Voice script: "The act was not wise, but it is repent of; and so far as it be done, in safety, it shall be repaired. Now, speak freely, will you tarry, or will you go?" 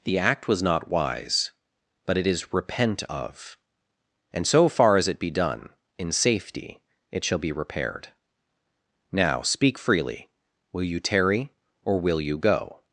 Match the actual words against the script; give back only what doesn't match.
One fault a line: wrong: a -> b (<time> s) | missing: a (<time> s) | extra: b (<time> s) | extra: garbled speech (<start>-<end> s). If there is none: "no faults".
no faults